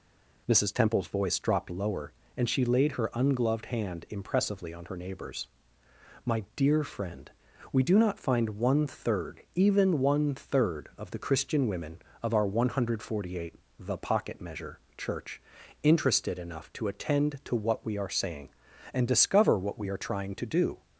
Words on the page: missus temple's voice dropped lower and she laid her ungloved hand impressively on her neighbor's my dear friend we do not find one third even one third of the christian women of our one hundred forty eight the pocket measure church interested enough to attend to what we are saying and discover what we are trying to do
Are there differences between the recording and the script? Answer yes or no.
no